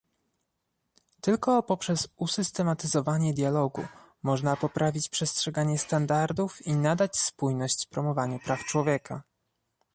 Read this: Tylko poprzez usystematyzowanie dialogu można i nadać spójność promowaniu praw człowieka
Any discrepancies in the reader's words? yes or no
yes